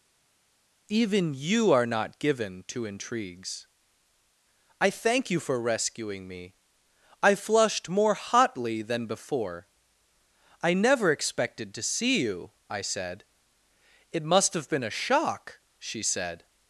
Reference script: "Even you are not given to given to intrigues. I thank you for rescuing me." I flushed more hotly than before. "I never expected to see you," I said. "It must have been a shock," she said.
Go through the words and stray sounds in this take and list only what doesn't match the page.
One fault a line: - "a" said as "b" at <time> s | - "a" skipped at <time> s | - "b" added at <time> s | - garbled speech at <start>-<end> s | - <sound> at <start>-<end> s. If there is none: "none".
- "given to" skipped at 2.9 s